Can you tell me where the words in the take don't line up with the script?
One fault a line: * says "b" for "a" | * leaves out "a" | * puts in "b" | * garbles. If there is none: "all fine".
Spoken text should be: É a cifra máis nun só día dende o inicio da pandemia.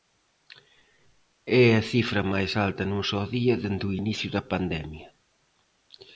* puts in "alta"